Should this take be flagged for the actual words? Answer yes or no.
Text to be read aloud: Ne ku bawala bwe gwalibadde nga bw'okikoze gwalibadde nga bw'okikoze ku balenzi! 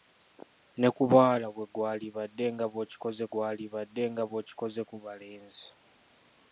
no